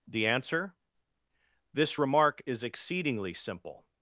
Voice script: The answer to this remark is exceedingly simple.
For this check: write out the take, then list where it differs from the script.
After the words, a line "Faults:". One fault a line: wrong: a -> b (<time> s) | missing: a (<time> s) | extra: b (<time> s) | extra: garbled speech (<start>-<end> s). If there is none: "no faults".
The answer this remark is exceedingly simple.
Faults:
missing: to (0.8 s)